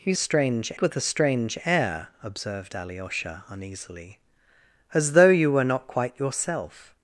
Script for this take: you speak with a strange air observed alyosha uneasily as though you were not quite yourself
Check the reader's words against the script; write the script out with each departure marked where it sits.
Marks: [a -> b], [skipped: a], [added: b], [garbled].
you [speak -> strange] with a strange air observed alyosha uneasily as though you were not quite yourself